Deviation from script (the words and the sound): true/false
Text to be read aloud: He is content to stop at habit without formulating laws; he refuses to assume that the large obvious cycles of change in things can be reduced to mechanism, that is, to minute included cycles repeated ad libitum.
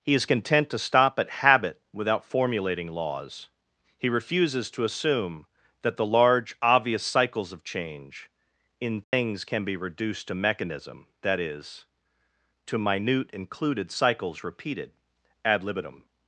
true